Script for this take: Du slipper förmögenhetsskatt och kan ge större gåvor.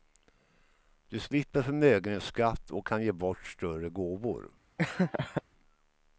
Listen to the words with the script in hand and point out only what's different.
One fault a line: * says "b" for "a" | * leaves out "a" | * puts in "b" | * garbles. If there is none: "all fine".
* puts in "bort"